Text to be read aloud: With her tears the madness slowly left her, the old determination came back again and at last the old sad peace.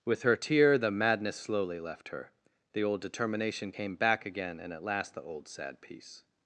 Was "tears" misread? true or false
true